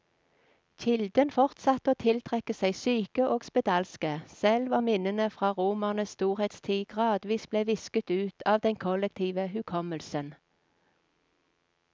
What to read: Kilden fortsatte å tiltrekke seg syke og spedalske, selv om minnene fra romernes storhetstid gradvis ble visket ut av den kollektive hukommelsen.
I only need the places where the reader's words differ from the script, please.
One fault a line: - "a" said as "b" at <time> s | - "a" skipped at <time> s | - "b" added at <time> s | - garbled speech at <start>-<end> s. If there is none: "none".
none